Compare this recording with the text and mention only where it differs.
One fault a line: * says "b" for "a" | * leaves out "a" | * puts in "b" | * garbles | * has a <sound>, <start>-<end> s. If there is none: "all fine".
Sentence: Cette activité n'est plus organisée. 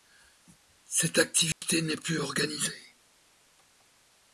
* has a dropout, 1.5-1.6 s